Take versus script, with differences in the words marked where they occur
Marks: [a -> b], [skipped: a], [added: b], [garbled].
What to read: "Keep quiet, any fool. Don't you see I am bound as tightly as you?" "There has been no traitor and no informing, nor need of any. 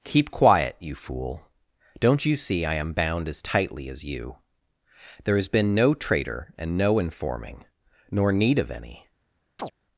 "Keep quiet, [any -> you] fool. Don't you see I am bound as tightly as you?" "There has been no traitor and no informing, nor need of any.